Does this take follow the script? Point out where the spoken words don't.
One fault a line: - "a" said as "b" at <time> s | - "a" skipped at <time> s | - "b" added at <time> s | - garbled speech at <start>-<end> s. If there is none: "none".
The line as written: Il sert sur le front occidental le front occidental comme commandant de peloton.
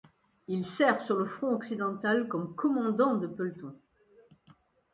- "le front occidental" skipped at 2.3 s